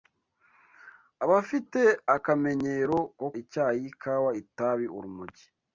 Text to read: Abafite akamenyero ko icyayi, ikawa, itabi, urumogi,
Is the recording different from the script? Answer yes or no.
no